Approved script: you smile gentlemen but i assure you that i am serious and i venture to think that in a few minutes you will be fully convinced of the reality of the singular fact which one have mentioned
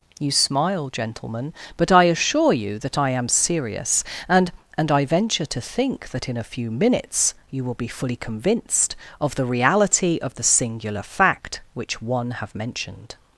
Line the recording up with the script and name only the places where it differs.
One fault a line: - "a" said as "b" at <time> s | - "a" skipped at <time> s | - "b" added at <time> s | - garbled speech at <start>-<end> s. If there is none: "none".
- "and" added at 4.8 s